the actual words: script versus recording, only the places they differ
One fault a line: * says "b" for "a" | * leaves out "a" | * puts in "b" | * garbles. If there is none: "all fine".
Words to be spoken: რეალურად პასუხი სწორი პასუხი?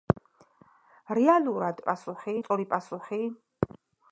all fine